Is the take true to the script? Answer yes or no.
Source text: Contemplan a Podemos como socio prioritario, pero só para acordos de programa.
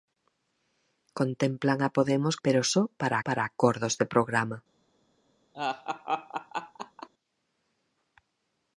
no